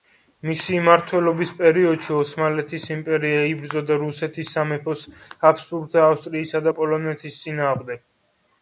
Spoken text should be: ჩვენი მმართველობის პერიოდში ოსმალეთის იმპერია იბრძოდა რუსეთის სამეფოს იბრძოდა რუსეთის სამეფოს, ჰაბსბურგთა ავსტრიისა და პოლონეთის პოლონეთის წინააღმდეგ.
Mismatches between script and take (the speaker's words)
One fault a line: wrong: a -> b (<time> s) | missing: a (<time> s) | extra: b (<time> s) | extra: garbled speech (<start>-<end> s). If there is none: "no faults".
wrong: ჩვენი -> მისი (0.5 s)
missing: იბრძოდა რუსეთის სამეფოს (5.0 s)
missing: პოლონეთის (7.4 s)